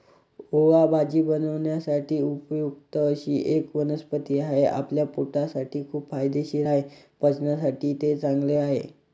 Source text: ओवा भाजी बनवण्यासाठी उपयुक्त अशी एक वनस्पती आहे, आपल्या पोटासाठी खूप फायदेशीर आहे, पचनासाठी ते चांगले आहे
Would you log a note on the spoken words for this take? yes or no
no